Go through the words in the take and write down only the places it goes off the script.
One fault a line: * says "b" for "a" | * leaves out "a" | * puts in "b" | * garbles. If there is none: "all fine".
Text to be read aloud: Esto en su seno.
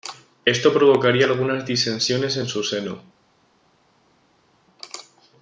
* puts in "provocaría algunas disensiones"